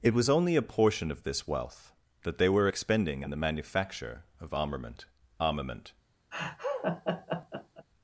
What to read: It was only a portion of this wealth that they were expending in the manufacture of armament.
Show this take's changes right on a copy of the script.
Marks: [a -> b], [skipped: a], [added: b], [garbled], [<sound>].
It was only a portion of this wealth that they were expending in the manufacture of armament. [added: armament] [laugh]